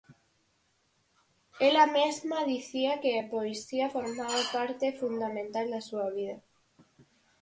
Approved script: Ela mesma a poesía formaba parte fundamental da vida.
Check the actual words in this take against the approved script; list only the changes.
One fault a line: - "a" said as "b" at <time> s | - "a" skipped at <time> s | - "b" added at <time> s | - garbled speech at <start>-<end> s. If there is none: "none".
- "dicía que" added at 2.5 s
- "súa" added at 5.9 s